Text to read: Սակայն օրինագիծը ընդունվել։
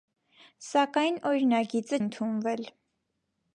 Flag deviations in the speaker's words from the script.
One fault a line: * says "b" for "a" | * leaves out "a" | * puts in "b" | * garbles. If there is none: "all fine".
all fine